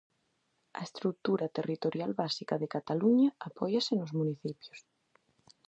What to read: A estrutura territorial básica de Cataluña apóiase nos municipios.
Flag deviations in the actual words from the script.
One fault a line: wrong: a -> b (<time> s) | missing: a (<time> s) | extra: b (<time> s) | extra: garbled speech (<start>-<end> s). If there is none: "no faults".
no faults